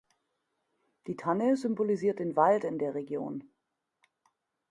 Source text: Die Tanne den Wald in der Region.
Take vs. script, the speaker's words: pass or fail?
fail